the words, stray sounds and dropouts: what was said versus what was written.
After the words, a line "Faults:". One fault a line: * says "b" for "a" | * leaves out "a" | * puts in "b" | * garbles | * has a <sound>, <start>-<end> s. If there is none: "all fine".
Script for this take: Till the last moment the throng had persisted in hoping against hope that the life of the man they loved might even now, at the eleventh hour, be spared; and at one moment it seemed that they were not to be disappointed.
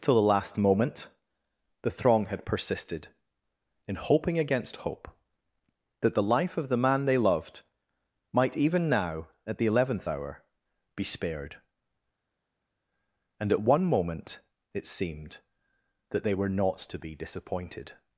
Till the last moment the throng had persisted in hoping against hope that the life of the man they loved might even now, at the eleventh hour, be spared; and at one moment it seemed that they were not to be disappointed.
Faults:
all fine